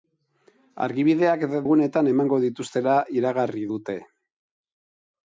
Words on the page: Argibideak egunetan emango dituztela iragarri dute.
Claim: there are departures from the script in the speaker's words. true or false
false